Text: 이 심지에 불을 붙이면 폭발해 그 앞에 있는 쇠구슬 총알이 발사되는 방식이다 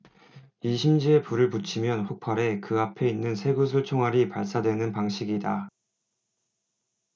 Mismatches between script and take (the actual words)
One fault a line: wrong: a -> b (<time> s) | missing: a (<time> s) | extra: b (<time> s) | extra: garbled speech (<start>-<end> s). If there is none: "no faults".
no faults